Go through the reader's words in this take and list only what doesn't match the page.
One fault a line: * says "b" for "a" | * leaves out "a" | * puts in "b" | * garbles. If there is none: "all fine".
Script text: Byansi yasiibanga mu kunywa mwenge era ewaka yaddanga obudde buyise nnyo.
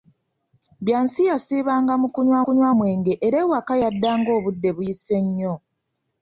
* puts in "kunywa"